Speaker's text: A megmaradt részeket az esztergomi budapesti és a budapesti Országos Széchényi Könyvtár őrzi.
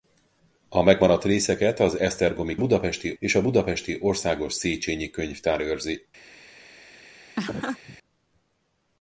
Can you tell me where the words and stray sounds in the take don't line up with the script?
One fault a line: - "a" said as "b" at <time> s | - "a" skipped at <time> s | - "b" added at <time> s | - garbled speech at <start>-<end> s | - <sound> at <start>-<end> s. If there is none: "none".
- laugh at 7.4-8.0 s